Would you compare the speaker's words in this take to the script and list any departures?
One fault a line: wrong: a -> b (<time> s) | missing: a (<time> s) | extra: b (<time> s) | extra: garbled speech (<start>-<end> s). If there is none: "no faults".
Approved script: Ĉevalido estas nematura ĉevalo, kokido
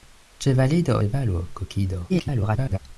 missing: estas nematura (0.9 s)
extra: garbled speech (2.1-2.8 s)